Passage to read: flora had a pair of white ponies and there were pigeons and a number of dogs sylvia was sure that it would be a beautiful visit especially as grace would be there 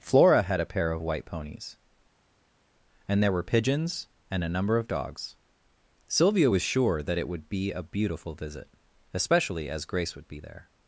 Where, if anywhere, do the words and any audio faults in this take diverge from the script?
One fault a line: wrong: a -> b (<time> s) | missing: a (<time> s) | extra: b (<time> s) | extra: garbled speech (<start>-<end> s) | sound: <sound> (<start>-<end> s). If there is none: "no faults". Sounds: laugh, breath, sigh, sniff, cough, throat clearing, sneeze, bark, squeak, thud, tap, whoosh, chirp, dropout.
no faults